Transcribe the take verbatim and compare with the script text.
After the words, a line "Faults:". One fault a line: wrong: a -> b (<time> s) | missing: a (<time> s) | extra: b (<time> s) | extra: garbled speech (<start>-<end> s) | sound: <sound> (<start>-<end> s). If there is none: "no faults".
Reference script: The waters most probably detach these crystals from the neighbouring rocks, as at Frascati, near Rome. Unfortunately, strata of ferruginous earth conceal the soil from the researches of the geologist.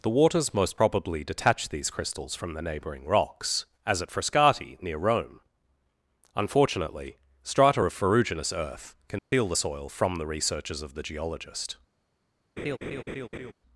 The waters most probably detach these crystals from the neighbouring rocks, as at Frascati, near Rome. Unfortunately, strata of ferruginous earth conceal the soil from the researches of the geologist.
Faults:
sound: dropout (9.2-9.3 s)
sound: laugh (12.6-13.5 s)